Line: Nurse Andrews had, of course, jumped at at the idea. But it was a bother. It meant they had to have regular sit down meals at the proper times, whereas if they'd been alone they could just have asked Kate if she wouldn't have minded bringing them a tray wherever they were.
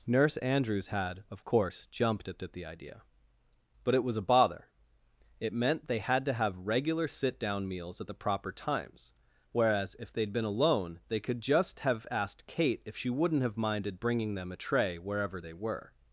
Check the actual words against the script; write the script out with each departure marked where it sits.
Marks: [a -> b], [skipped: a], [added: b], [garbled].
Nurse Andrews had, of course, jumped at at the idea. But it was a bother. It meant they had to have regular sit down meals at the proper times, whereas if they'd been alone they could just have asked Kate if she wouldn't have minded bringing them a tray wherever they were.